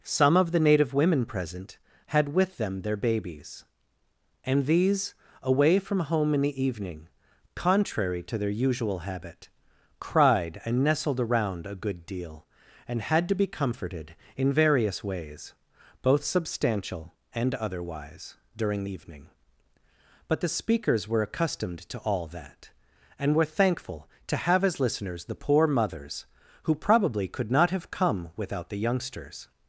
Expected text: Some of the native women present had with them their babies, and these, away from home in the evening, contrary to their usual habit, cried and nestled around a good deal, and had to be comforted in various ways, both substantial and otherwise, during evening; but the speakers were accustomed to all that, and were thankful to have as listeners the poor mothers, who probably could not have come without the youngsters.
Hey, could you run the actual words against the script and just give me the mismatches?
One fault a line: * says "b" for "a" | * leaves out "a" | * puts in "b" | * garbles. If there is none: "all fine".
all fine